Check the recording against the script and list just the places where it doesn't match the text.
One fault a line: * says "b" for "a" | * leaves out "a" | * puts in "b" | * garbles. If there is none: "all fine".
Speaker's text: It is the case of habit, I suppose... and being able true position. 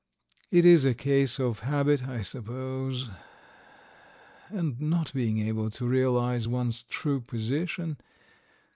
* says "a" for "the"
* puts in "not"
* puts in "to realize one's"